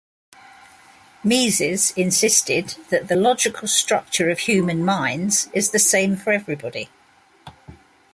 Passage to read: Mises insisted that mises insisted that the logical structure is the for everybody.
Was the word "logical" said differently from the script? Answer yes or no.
yes